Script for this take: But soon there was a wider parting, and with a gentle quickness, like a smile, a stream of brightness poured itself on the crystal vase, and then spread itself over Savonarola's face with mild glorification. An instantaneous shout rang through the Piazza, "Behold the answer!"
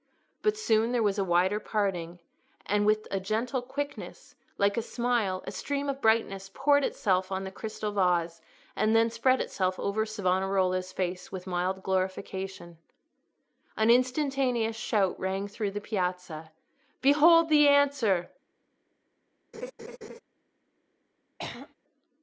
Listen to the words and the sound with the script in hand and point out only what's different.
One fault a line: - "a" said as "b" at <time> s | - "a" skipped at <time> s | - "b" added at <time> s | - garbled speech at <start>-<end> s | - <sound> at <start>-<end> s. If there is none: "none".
- laugh at 19.5-20.2 s
- throat clearing at 21.4-21.7 s